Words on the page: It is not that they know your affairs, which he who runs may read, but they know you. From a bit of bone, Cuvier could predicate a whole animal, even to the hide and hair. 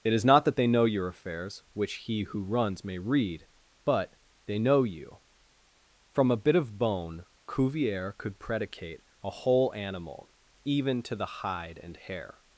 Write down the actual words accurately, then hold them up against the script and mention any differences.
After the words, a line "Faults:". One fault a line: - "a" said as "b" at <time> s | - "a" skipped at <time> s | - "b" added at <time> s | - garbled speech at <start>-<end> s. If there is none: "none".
It is not that they know your affairs, which he who runs may read, but they know you. From a bit of bone, Cuvier could predicate a whole animal, even to the hide and hair.
Faults:
none